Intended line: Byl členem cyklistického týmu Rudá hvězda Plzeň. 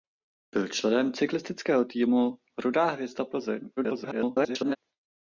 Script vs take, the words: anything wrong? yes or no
yes